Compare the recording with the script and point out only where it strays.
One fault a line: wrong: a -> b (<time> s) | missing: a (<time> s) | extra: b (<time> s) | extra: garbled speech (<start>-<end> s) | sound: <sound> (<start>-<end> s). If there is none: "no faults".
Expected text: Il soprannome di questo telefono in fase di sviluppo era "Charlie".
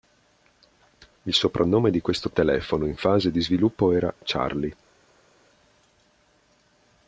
no faults